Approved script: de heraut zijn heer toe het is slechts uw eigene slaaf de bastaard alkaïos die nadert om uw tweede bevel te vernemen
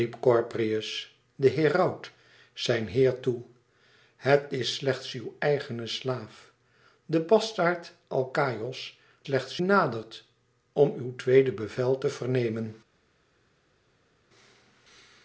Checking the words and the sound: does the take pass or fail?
fail